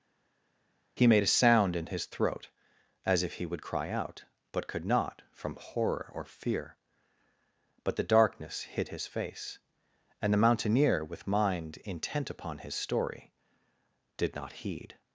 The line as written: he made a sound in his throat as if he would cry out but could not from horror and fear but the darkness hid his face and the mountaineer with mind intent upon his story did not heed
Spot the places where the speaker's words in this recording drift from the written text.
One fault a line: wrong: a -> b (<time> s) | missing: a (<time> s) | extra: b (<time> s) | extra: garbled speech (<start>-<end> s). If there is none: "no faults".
wrong: and -> or (6.1 s)